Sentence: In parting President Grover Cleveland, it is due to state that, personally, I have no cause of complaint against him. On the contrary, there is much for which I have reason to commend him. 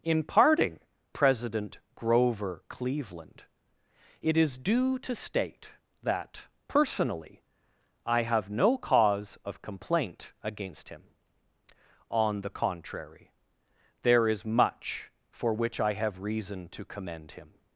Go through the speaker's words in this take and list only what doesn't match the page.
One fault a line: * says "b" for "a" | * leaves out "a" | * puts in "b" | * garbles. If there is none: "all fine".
all fine